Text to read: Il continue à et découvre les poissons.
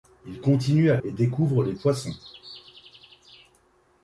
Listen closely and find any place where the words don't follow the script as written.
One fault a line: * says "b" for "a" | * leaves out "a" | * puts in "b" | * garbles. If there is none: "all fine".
all fine